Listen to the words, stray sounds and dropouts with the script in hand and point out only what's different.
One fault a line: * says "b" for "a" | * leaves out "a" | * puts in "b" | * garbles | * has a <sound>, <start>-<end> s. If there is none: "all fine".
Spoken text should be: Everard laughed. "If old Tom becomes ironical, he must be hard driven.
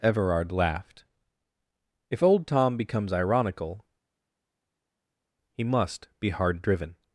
all fine